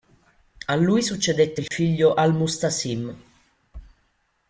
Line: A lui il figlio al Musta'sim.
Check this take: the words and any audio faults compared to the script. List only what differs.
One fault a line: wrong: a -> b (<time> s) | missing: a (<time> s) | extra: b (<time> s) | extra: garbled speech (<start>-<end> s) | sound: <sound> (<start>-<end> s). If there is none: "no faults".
extra: succedette (1.0 s)
sound: dropout (1.7-1.7 s)